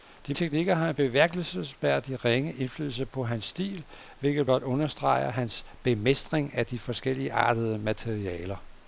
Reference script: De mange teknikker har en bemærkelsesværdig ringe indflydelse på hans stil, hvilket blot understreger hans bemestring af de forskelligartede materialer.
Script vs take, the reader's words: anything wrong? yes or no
yes